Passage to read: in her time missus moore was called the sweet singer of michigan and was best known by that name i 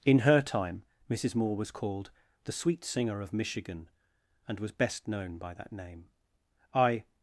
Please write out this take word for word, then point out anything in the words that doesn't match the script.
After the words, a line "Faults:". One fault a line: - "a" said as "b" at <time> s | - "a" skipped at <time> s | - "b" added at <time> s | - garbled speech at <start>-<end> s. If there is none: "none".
in her time missus moore was called the sweet singer of michigan and was best known by that name i
Faults:
none